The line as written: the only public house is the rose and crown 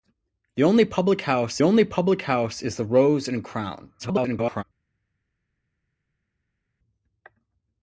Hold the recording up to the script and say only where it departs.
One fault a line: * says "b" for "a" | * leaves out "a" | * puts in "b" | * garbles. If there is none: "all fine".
* puts in "only public house"
* garbles